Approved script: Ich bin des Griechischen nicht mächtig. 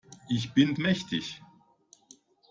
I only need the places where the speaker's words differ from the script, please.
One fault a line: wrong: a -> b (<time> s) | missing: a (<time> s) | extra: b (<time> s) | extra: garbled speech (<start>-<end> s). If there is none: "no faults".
missing: des Griechischen nicht (0.7 s)